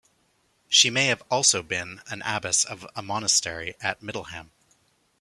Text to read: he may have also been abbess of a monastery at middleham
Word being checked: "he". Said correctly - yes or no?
no